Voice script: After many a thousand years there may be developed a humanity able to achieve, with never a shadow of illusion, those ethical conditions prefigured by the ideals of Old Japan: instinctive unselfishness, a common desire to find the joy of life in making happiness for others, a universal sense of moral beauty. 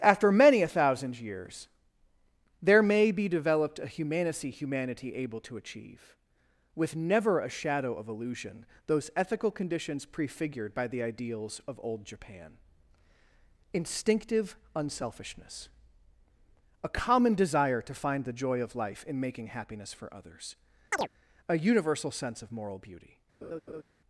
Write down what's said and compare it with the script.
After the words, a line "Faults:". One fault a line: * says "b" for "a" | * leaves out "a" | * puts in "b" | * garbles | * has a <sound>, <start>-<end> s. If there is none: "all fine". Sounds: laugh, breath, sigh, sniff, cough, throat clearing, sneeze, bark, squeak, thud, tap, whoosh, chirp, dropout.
After many a thousand years there may be developed a humanity humanity able to achieve, with never a shadow of illusion, those ethical conditions prefigured by the ideals of Old Japan: instinctive unselfishness, a common desire to find the joy of life in making happiness for others, a universal sense of moral beauty.
Faults:
* puts in "humanity"
* has a chirp, 20.9-21.1 s
* has a laugh, 23.4-23.8 s